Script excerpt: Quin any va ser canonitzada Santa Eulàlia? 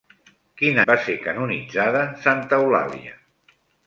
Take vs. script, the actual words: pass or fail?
fail